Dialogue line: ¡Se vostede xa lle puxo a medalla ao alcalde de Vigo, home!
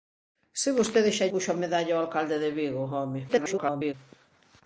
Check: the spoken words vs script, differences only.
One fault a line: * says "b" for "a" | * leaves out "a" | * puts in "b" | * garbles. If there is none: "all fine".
* leaves out "lle"
* garbles